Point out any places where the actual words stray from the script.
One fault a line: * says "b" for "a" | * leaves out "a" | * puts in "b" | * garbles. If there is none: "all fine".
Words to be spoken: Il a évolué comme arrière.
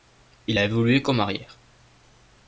all fine